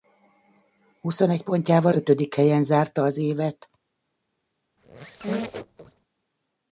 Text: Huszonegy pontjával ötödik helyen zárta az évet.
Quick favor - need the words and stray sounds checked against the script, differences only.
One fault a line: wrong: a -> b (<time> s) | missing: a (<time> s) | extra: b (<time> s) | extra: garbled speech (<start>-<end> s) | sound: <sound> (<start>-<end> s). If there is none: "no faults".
sound: squeak (4.8-6.1 s)